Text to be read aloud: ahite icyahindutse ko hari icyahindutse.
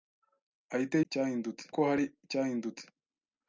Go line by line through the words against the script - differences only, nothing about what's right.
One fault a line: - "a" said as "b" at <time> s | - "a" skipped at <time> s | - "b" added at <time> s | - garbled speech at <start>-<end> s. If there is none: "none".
none